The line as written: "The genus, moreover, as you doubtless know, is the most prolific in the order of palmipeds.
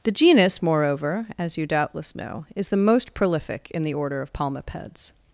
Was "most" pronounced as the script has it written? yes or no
yes